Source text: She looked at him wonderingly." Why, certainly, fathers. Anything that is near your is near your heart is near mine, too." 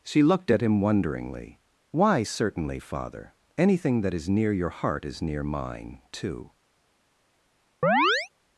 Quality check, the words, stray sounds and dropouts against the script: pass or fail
fail